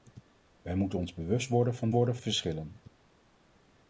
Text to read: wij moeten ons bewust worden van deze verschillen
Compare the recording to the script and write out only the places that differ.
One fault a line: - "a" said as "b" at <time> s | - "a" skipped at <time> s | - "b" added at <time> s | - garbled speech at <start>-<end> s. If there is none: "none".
- "deze" said as "worden" at 1.9 s